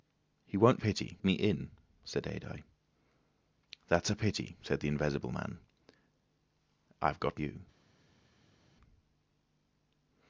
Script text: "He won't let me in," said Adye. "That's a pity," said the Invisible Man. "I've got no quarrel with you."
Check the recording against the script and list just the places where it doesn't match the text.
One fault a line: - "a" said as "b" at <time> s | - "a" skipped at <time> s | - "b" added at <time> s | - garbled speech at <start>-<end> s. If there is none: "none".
- "let" said as "pity" at 0.8 s
- "no quarrel with" skipped at 7.4 s